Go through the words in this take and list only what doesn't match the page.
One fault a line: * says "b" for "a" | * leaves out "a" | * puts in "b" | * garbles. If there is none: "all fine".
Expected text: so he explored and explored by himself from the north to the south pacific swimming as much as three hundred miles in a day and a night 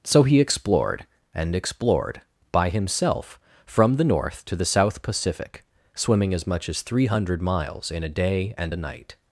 all fine